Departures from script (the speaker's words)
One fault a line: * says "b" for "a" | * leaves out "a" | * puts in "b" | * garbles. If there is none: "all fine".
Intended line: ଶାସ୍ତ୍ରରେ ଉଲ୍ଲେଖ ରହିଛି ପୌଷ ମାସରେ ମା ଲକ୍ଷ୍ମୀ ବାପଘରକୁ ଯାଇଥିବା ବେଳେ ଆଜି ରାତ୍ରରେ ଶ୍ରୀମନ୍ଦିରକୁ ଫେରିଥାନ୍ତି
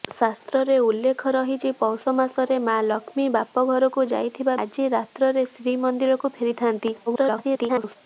* leaves out "ବେଳେ"
* garbles